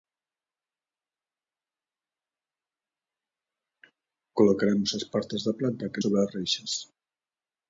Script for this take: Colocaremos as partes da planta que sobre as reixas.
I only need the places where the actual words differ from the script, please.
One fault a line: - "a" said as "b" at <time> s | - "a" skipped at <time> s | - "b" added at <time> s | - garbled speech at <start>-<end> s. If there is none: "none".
none